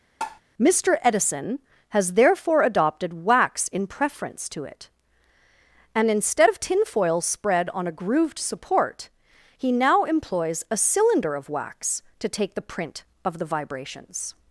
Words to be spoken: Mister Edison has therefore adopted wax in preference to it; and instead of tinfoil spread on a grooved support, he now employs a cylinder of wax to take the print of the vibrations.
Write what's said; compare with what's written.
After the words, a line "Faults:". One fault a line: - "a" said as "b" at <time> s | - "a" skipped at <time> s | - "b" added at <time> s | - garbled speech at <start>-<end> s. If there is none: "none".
Mister Edison has therefore adopted wax in preference to it; and instead of tinfoil spread on a grooved support, he now employs a cylinder of wax to take the print of the vibrations.
Faults:
none